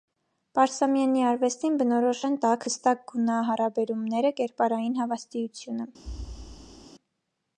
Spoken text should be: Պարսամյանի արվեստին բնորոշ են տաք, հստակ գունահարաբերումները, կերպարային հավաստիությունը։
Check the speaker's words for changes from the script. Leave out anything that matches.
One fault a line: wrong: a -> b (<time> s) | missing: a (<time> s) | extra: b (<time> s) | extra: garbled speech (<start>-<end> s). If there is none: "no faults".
no faults